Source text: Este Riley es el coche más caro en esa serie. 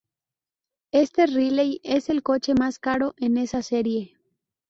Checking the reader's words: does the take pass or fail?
pass